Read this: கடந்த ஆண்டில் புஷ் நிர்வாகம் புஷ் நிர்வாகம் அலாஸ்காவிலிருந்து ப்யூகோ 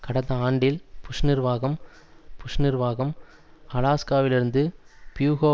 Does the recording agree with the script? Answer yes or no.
yes